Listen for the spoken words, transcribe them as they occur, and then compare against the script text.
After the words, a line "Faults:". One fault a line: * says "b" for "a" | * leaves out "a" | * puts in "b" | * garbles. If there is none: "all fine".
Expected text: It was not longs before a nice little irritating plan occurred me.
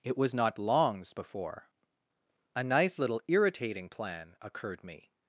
It was not longs before a nice little irritating plan occurred me.
Faults:
all fine